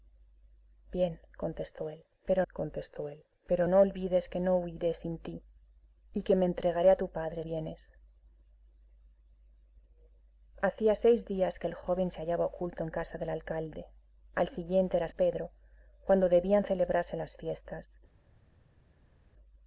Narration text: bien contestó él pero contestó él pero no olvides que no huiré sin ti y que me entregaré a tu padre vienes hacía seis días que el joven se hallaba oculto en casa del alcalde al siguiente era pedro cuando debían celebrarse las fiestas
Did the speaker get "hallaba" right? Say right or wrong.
right